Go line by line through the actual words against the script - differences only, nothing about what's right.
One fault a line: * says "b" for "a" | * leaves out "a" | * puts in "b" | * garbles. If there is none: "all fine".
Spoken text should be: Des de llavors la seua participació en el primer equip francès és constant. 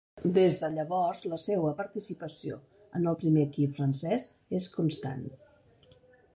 all fine